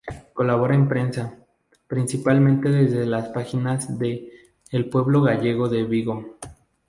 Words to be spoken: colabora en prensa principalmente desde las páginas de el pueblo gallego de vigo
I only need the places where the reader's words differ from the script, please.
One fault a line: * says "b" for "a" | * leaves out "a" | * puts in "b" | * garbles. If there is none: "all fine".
all fine